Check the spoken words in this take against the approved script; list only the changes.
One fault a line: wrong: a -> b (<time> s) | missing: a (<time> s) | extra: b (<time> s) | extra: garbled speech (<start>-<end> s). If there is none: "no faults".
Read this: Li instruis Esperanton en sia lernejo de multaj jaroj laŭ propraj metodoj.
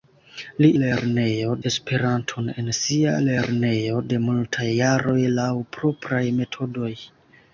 wrong: instruis -> lernejo (0.8 s)